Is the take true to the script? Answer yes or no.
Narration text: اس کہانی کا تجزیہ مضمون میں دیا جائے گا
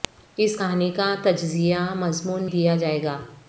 no